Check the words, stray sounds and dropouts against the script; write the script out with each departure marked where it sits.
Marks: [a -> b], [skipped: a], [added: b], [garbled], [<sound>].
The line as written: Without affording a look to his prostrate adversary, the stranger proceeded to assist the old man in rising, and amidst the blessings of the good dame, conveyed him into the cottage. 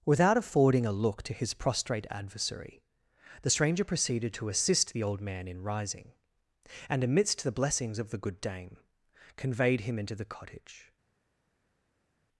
Without affording a look to his prostrate adversary, the stranger proceeded to assist the old man in rising, and amidst the blessings of the good dame, conveyed him into the cottage.